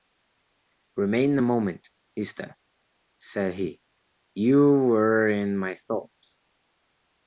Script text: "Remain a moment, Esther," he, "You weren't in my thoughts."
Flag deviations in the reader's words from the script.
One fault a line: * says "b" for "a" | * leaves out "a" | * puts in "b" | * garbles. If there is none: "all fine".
* puts in "said"
* says "were" for "weren't"